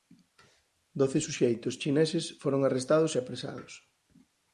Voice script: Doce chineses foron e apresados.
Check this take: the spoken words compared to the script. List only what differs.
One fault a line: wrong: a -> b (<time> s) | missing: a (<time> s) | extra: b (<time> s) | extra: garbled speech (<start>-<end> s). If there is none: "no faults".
extra: suxeitos (1.2 s)
extra: arrestados (2.6 s)